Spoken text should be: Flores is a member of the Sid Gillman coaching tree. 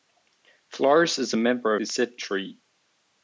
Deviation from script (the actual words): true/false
true